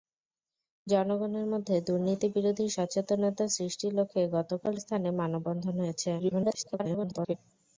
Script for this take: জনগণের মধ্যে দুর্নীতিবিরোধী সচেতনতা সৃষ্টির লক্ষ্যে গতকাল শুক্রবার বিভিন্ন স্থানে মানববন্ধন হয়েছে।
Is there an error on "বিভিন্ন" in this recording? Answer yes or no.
yes